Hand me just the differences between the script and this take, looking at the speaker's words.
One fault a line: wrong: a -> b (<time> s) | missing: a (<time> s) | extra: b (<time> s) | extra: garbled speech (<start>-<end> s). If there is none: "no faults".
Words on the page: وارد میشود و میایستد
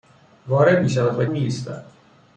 no faults